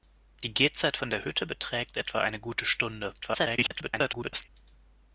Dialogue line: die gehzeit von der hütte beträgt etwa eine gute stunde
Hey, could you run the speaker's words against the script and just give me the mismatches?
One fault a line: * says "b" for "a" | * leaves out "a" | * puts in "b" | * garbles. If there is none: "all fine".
* garbles